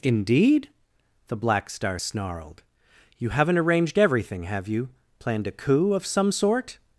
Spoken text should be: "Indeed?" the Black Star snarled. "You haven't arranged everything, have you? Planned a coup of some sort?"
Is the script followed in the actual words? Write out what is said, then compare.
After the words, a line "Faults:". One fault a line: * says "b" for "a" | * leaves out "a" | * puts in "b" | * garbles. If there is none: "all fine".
"Indeed?" the Black Star snarled. "You haven't arranged everything, have you? Planned a coup of some sort?"
Faults:
all fine